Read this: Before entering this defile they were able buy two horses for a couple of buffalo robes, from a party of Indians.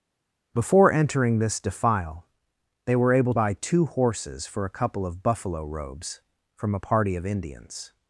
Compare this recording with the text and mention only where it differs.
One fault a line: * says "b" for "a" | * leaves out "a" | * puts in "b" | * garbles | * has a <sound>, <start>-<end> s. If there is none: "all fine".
all fine